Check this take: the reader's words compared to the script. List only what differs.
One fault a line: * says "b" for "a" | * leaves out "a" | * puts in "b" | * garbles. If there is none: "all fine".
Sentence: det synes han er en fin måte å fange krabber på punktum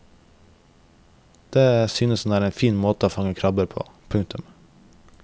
all fine